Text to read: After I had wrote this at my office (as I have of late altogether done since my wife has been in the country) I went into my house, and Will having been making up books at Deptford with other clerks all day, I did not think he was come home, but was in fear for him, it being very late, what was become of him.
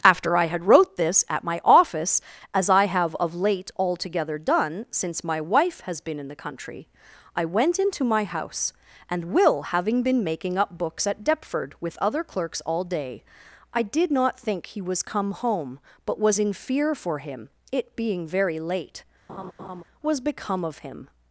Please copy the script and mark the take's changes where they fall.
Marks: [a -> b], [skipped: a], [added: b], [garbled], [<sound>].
After I had wrote this at my office (as I have of late altogether done since my wife has been in the country) I went into my house, and Will having been making up books at Deptford with other clerks all day, I did not think he was come home, but was in fear for him, it being very late, [skipped: what] [laugh] was become of him.